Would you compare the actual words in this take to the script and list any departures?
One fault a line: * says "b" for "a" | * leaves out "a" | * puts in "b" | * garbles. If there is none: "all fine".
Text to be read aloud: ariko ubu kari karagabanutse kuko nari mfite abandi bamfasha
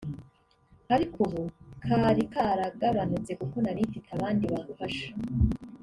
all fine